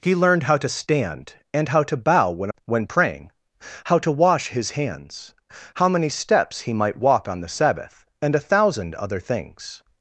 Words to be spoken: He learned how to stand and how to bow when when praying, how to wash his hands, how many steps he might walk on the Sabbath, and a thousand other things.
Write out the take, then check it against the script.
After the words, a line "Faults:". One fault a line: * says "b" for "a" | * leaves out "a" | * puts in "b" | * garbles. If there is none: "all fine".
He learned how to stand and how to bow when when praying, how to wash his hands, how many steps he might walk on the Sabbath, and a thousand other things.
Faults:
all fine